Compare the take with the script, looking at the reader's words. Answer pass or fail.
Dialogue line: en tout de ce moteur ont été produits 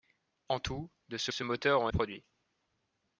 fail